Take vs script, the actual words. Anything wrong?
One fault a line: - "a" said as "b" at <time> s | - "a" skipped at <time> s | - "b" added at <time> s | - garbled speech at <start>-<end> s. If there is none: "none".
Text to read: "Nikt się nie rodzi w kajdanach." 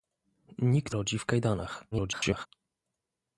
- "się nie" skipped at 0.9 s
- garbled speech at 1.9-2.5 s